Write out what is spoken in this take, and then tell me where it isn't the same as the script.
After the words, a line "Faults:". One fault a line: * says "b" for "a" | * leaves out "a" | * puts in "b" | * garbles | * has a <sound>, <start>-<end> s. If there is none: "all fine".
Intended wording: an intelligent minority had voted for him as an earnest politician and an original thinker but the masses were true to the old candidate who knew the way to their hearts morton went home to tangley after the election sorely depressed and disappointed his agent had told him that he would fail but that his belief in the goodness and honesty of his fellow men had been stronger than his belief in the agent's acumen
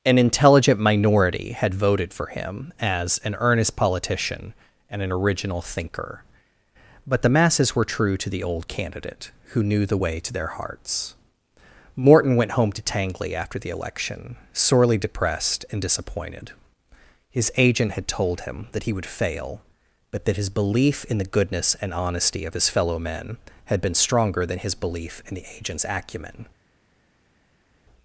an intelligent minority had voted for him as an earnest politician and an original thinker but the masses were true to the old candidate who knew the way to their hearts morton went home to tangley after the election sorely depressed and disappointed his agent had told him that he would fail but that his belief in the goodness and honesty of his fellow men had been stronger than his belief in the agent's acumen
Faults:
all fine